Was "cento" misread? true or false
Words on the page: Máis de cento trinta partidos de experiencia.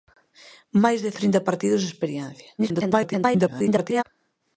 true